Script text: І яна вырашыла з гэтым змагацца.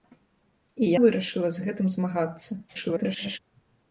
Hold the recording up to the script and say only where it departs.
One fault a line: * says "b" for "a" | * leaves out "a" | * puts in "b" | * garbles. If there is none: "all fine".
* leaves out "яна"
* garbles